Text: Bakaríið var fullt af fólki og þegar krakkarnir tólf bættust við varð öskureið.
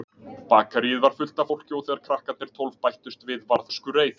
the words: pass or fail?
pass